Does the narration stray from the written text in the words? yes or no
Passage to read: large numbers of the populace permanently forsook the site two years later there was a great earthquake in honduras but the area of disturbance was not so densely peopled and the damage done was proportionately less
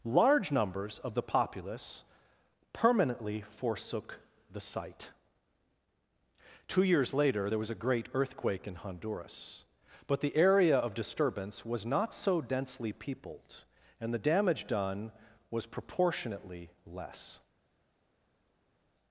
no